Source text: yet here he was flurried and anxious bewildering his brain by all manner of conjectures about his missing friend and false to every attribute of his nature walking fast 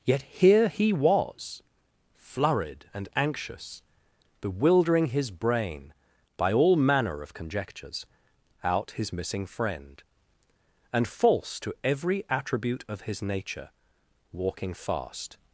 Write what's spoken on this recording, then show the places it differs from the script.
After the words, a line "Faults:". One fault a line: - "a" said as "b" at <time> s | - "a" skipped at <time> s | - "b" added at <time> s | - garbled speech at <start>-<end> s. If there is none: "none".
yet here he was flurried and anxious bewildering his brain by all manner of conjectures out his missing friend and false to every attribute of his nature walking fast
Faults:
- "about" said as "out" at 8.6 s